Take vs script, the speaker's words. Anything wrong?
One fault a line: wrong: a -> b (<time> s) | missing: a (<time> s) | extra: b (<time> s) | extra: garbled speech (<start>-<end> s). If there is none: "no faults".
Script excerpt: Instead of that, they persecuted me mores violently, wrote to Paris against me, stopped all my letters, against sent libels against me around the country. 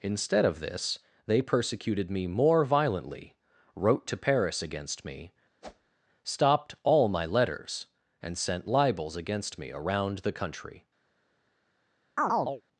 wrong: that -> this (0.6 s)
wrong: mores -> more (2.3 s)
wrong: against -> and (8.2 s)